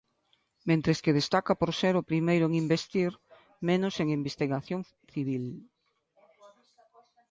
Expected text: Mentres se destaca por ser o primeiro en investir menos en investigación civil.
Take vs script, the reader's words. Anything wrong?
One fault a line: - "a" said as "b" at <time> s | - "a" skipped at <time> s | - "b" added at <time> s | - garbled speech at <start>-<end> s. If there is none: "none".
- "se" said as "que" at 1.0 s